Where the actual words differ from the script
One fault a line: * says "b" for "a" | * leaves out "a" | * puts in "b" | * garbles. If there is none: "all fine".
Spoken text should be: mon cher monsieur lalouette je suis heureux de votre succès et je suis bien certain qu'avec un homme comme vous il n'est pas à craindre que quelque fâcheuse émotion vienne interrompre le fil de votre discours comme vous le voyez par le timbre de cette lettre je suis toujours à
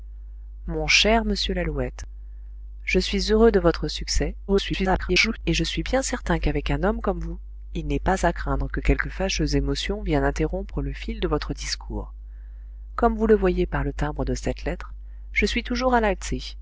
* garbles